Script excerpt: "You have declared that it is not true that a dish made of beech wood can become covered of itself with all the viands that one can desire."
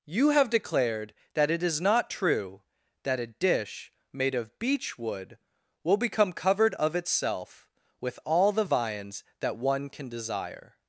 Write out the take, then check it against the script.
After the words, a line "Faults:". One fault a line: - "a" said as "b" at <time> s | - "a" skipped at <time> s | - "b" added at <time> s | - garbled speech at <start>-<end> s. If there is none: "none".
"You have declared that it is not true that a dish made of beech wood will become covered of itself with all the viands that one can desire."
Faults:
- "can" said as "will" at 5.8 s